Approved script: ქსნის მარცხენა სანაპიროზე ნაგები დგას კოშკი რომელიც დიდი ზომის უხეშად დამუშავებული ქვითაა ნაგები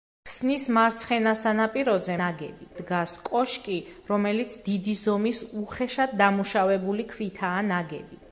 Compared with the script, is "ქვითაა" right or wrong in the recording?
right